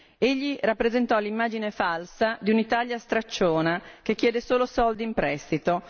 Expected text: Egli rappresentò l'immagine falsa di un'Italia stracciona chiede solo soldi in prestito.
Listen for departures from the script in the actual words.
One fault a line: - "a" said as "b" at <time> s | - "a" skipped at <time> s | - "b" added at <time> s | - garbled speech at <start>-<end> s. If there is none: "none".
- "che" added at 4.0 s